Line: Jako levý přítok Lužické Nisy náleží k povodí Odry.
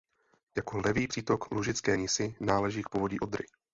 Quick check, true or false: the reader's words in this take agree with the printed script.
true